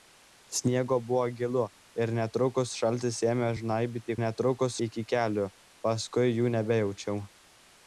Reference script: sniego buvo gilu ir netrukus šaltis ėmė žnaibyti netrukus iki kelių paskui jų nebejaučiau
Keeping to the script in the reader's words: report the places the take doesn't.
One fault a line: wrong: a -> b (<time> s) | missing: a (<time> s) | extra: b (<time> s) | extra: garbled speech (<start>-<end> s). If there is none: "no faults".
no faults